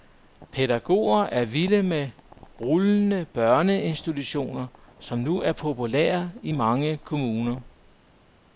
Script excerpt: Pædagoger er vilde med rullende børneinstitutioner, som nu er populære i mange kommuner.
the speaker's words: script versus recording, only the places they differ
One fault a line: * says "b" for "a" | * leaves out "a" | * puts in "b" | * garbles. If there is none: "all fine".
all fine